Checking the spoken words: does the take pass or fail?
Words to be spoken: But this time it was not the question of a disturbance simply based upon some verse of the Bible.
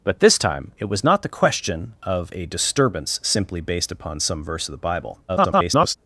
fail